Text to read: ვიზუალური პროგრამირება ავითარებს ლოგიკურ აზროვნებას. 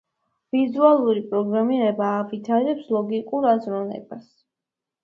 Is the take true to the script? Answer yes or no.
yes